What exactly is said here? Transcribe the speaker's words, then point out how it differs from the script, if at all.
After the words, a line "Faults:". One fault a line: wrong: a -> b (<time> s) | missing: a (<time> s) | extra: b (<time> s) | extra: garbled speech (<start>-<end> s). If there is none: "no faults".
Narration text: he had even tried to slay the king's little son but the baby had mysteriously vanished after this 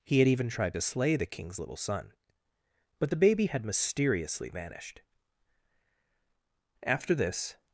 he had even tried to slay the king's little son but the baby had mysteriously vanished after this
Faults:
no faults